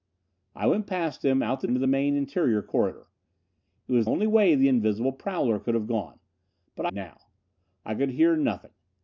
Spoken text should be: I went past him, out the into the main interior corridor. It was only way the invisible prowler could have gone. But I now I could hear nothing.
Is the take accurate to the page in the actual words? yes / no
yes